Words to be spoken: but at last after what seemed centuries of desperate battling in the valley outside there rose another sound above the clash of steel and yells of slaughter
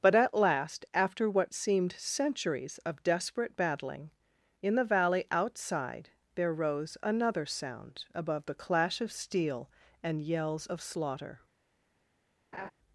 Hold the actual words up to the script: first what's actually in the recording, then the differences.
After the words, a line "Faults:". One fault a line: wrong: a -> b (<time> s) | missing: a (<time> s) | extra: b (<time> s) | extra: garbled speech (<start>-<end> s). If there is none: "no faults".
but at last after what seemed centuries of desperate battling in the valley outside there rose another sound above the clash of steel and yells of slaughter
Faults:
no faults